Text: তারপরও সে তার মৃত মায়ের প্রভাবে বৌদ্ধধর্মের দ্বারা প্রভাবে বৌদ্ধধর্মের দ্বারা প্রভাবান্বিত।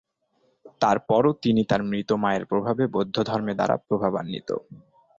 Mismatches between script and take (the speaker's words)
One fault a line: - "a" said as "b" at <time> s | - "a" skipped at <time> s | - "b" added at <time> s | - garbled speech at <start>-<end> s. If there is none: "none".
- "সে" said as "তিনি" at 1.4 s
- "প্রভাবে বৌদ্ধধর্মের দ্বারা" skipped at 3.8 s